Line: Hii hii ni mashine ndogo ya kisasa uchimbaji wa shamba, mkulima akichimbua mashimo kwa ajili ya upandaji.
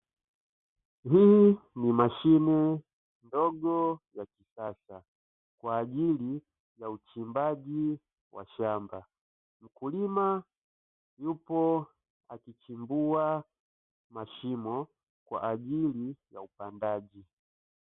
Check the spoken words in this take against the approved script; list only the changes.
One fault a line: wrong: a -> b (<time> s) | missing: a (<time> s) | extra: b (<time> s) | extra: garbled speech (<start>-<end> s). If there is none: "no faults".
missing: hii (1.6 s)
extra: kwa ajili ya (5.6 s)
extra: yupo (11.2 s)